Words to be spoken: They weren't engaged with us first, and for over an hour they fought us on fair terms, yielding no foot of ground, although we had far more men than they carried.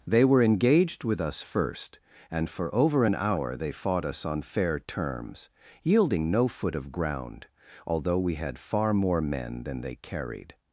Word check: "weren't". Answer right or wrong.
wrong